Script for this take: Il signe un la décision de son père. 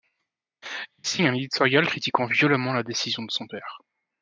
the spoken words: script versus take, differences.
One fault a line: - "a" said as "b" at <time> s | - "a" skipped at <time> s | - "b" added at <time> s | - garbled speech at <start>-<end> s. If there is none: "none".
- "éditorial critiquant violemment" added at 1.3 s